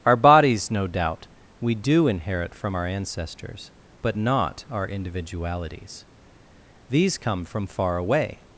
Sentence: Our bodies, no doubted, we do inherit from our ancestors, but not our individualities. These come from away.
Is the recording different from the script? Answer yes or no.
yes